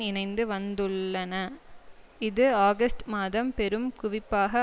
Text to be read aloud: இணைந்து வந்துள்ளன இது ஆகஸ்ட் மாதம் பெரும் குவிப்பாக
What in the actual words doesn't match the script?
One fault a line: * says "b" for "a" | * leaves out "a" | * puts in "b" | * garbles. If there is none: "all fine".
all fine